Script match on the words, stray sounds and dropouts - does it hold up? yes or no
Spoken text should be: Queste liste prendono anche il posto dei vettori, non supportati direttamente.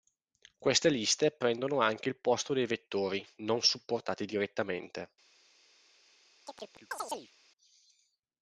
no